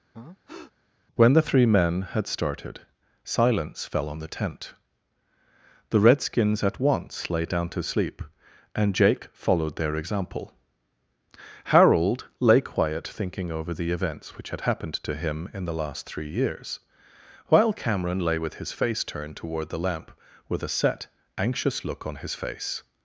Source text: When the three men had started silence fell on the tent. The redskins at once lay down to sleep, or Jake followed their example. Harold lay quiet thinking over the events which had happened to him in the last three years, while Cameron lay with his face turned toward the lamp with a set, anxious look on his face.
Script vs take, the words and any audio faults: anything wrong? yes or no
yes